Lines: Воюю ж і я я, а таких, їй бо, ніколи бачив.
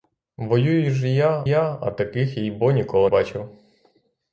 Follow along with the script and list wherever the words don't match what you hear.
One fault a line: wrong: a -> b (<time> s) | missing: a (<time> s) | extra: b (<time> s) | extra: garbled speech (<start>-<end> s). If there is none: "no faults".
no faults